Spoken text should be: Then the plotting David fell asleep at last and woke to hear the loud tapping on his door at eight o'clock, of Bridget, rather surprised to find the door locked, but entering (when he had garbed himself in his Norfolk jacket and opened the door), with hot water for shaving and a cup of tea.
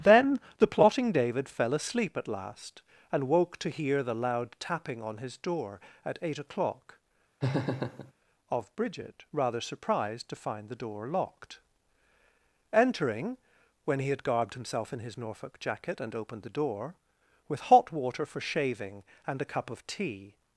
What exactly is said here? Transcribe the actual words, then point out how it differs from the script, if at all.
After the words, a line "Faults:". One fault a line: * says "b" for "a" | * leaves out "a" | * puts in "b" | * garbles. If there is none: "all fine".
Then the plotting David fell asleep at last and woke to hear the loud tapping on his door at eight o'clock, of Bridget, rather surprised to find the door locked, entering (when he had garbed himself in his Norfolk jacket and opened the door), with hot water for shaving and a cup of tea.
Faults:
* leaves out "but"